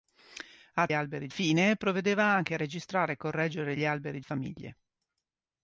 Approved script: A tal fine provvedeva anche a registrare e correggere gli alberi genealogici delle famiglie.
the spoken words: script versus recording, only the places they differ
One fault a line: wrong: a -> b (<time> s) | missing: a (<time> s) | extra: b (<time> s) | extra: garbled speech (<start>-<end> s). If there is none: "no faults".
wrong: tal -> alberi (0.9 s)
missing: genealogici delle (4.2 s)